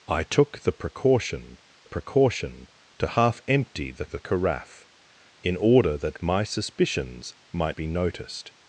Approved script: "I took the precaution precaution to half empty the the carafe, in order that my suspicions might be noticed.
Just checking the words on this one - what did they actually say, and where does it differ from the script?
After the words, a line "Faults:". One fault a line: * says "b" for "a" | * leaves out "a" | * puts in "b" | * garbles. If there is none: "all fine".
"I took the precaution precaution to half empty the the carafe, in order that my suspicions might be noticed.
Faults:
all fine